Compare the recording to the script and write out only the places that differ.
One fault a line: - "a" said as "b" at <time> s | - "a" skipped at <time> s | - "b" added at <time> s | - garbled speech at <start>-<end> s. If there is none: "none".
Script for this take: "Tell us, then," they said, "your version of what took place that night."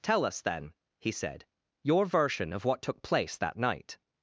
- "they" said as "he" at 1.0 s